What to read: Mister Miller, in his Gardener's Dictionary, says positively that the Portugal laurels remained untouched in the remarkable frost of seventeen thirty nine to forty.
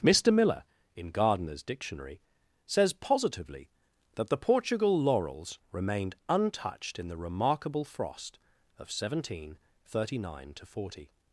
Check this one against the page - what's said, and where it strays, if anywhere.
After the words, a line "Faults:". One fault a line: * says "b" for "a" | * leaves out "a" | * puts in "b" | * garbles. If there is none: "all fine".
Mister Miller, in Gardener's Dictionary, says positively that the Portugal laurels remained untouched in the remarkable frost of seventeen thirty nine to forty.
Faults:
* leaves out "his"